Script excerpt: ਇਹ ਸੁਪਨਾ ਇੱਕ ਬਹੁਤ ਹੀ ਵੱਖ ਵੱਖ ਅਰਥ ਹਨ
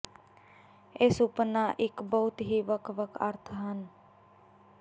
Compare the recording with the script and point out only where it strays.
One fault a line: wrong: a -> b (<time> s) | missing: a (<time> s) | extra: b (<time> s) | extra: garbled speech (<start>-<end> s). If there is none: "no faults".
no faults